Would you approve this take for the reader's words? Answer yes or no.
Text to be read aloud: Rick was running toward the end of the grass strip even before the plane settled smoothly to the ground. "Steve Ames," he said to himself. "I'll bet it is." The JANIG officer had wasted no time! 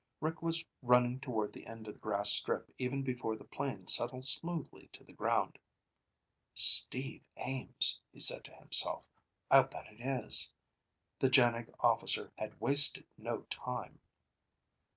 yes